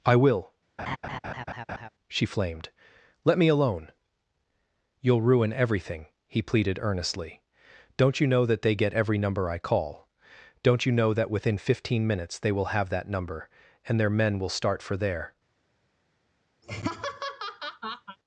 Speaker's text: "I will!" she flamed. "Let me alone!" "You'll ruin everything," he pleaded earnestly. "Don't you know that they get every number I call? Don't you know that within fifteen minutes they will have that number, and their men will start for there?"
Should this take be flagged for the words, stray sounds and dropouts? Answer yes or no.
yes